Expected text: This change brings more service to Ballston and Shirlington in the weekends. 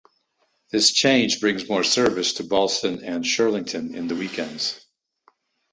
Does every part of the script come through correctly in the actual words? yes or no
yes